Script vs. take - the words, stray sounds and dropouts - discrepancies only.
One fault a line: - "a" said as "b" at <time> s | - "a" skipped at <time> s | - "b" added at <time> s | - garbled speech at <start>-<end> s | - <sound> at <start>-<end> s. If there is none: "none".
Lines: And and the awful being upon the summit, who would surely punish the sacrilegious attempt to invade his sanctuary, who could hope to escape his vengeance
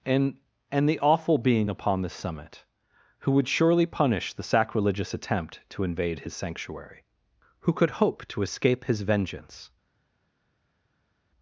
none